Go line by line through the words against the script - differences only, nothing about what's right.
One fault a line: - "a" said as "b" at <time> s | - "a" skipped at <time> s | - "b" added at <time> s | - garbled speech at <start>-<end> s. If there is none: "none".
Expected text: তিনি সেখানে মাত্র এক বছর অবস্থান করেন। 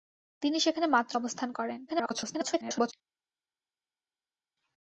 - "এক বছর" skipped at 1.1 s
- garbled speech at 1.9-2.9 s